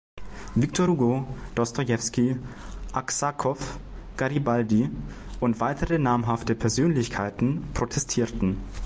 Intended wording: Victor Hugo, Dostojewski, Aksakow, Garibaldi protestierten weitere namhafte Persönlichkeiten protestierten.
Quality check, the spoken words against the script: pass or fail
fail